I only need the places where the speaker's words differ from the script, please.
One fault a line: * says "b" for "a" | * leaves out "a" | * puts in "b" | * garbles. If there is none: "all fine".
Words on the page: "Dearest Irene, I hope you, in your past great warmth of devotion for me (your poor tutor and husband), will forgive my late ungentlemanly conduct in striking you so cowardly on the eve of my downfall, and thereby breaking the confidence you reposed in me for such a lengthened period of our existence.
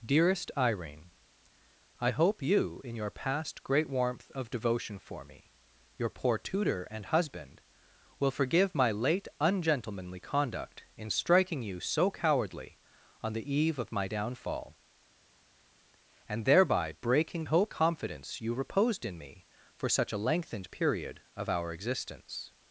* says "hope" for "the"